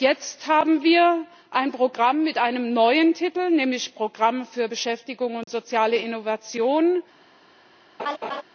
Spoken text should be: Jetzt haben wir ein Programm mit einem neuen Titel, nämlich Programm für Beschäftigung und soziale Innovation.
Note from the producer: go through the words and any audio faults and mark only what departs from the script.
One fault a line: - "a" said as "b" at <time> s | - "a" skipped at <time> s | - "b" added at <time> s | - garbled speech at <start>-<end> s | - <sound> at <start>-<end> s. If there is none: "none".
- dropout at 5.4-5.5 s
- laugh at 8.0-8.4 s